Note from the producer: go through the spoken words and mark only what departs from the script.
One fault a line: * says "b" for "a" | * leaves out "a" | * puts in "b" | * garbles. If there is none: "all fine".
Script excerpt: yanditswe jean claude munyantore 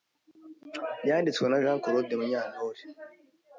* puts in "na"